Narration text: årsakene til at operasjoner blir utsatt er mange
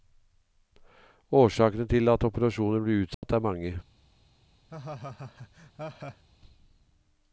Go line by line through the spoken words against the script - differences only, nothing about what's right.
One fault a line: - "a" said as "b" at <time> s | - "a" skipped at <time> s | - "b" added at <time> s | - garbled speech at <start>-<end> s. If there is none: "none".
none